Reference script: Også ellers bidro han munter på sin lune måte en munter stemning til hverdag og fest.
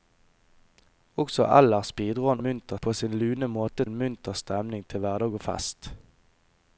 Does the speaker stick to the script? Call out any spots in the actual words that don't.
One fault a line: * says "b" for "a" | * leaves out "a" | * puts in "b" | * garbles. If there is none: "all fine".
all fine